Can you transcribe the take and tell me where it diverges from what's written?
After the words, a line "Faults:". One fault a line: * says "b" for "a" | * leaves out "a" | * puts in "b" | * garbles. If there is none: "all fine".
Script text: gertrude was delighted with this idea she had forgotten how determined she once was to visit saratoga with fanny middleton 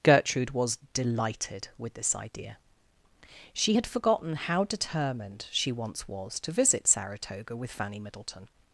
gertrude was delighted with this idea she had forgotten how determined she once was to visit saratoga with fanny middleton
Faults:
all fine